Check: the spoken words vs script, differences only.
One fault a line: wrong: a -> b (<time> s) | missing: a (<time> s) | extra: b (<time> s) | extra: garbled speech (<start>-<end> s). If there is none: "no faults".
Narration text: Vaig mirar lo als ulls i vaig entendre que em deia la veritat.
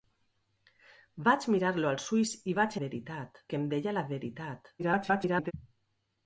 wrong: entendre -> veritat (2.8 s)
extra: garbled speech (4.8-5.5 s)